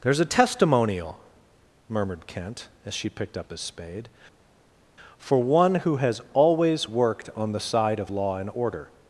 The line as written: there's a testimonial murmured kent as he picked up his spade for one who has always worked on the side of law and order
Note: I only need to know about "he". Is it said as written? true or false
false